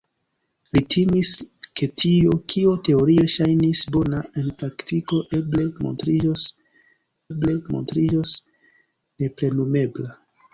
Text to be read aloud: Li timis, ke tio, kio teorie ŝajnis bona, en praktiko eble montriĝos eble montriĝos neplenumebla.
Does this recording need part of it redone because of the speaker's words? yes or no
no